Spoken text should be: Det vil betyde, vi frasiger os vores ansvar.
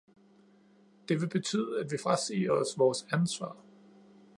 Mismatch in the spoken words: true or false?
true